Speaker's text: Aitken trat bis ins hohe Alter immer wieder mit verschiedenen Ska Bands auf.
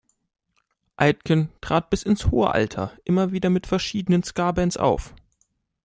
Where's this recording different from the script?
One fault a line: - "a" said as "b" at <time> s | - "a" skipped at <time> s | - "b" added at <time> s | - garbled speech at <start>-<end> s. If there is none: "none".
none